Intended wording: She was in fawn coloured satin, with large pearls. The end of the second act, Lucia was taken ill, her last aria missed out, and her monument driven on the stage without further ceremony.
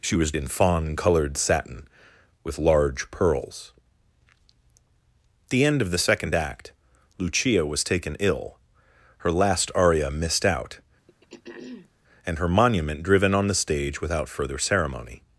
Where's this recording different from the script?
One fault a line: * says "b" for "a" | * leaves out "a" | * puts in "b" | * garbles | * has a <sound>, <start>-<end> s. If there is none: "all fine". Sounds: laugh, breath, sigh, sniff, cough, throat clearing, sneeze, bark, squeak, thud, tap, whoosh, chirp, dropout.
* has a throat clearing, 11.1-11.9 s